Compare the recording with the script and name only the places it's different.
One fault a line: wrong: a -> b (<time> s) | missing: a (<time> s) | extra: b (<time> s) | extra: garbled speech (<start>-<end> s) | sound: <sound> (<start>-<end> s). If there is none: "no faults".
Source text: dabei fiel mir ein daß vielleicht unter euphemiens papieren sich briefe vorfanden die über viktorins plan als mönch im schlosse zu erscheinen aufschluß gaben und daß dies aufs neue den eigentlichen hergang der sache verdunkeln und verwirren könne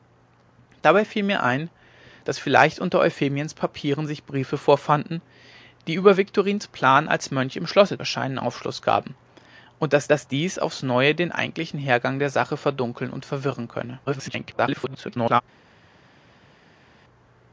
missing: zu (8.0 s)
extra: daß (10.1 s)
extra: garbled speech (14.1-15.4 s)